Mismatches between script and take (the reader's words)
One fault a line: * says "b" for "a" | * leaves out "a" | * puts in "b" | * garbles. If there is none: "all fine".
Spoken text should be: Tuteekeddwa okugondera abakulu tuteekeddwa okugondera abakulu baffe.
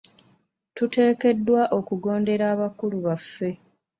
* leaves out "tuteekeddwa okugondera abakulu"